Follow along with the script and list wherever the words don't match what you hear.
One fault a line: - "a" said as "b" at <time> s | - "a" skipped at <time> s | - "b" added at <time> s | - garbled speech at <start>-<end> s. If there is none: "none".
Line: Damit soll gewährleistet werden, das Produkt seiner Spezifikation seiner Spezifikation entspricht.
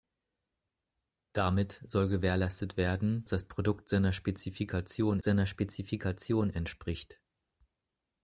none